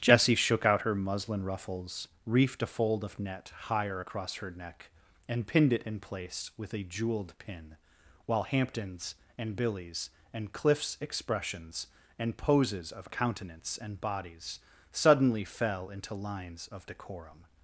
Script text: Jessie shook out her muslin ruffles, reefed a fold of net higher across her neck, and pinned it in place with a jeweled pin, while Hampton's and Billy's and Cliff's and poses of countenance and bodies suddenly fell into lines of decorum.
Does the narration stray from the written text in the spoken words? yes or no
yes